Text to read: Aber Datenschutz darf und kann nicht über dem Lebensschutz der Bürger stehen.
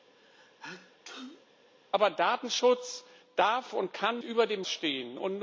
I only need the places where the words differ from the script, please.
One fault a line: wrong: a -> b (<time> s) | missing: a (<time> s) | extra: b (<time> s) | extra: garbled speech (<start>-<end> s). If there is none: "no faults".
missing: nicht (4.2 s)
missing: Lebensschutz der Bürger (4.6 s)